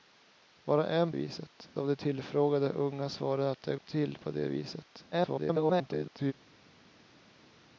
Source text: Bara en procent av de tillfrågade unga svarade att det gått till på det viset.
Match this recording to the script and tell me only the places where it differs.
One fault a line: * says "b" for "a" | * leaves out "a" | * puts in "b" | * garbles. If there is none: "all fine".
* says "viset" for "procent"
* leaves out "gått"
* garbles